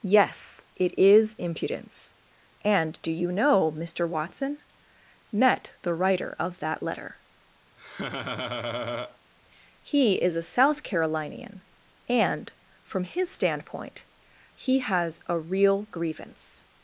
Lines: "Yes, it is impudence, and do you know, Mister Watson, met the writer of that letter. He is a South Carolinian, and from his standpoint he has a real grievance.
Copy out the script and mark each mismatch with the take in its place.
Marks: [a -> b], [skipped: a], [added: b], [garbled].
"Yes, it is impudence, and do you know, Mister Watson, met the writer of that letter. He is a South Carolinian, and from his standpoint he has a real grievance.